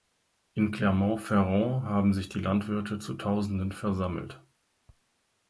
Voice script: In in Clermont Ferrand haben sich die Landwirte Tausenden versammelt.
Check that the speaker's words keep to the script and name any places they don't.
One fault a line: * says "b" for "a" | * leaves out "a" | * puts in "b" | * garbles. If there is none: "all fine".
* leaves out "in"
* puts in "zu"